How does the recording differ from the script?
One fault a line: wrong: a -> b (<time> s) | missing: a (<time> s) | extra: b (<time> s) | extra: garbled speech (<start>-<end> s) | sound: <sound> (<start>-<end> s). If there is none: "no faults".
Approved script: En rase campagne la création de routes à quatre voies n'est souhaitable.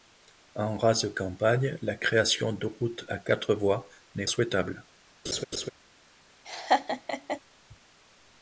sound: laugh (5.2-5.7 s)
sound: laugh (6.5-7.4 s)